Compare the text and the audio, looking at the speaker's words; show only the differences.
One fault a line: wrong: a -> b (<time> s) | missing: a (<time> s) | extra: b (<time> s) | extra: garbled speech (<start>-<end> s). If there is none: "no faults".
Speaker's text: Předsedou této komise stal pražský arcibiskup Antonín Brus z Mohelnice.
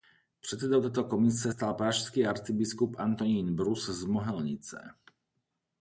no faults